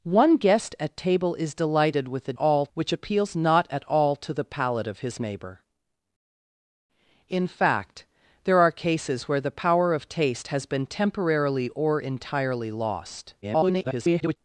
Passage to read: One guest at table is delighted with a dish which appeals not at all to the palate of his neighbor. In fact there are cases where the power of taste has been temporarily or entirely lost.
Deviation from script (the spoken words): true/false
true